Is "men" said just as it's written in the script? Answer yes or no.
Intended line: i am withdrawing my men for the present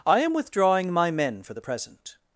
yes